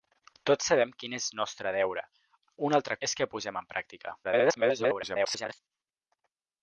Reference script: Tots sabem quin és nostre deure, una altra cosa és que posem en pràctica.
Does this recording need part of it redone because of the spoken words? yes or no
yes